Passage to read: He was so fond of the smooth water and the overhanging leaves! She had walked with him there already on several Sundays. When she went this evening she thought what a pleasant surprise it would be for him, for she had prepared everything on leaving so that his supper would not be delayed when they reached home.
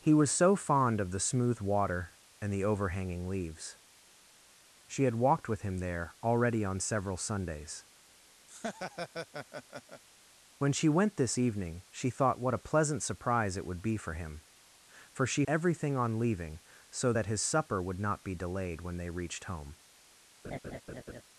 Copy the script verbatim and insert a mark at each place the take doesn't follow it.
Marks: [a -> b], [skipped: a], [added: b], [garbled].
He was so fond of the smooth water and the overhanging leaves! She had walked with him there already on several Sundays. When she went this evening she thought what a pleasant surprise it would be for him, for she [skipped: had prepared] everything on leaving so that his supper would not be delayed when they reached home.